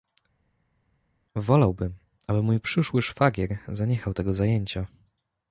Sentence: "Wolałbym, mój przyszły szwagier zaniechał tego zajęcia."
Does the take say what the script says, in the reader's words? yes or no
no